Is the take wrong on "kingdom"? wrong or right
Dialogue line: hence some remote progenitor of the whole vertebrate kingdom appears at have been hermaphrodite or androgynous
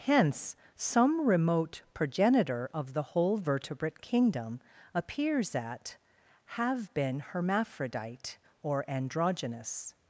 right